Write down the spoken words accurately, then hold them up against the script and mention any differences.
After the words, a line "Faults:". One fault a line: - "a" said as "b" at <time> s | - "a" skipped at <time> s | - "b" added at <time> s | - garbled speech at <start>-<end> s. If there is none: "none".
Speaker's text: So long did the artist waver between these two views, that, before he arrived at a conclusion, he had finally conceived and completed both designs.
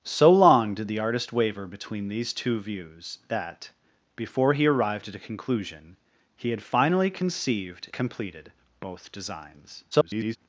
So long did the artist waver between these two views, that, before he arrived at a conclusion, he had finally conceived completed both designs. [garbled]
Faults:
- "and" skipped at 7.9 s
- garbled speech at 9.9-10.4 s